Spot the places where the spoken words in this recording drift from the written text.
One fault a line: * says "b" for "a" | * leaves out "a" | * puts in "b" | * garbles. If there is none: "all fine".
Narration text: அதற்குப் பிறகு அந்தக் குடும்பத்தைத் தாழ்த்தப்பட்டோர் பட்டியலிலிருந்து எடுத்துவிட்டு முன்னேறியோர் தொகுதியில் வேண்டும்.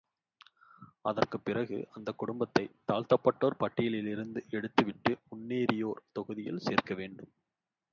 * puts in "சேர்க்க"